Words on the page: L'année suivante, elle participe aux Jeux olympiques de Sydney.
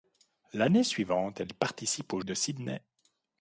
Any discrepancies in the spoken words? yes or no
yes